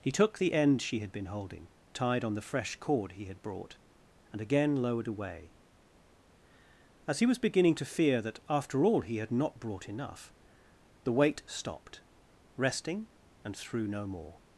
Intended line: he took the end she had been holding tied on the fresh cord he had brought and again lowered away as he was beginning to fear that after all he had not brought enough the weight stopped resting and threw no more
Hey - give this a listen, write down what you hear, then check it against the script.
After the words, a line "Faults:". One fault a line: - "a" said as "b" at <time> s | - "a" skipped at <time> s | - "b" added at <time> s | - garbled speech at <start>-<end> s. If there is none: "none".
he took the end she had been holding tied on the fresh cord he had brought and again lowered away as he was beginning to fear that after all he had not brought enough the weight stopped resting and threw no more
Faults:
none